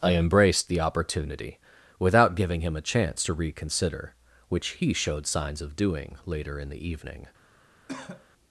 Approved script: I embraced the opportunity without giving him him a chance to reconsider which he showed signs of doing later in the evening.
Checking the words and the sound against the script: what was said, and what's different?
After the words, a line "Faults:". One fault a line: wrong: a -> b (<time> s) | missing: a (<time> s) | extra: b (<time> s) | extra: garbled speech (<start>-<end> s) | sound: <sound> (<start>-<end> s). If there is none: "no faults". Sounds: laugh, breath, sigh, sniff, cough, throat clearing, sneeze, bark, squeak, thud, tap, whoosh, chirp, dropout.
I embraced the opportunity without giving him a chance to reconsider which he showed signs of doing later in the evening.
Faults:
missing: him (2.7 s)
sound: cough (7.9-8.3 s)